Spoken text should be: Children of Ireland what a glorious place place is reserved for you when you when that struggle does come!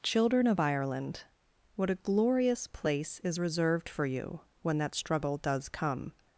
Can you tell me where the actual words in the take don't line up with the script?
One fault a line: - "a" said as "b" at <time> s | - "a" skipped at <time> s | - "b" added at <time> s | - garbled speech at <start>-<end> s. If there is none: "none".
- "place" skipped at 3.2 s
- "you when" skipped at 4.8 s